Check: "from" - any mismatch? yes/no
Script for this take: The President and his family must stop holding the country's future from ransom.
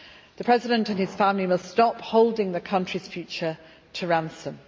yes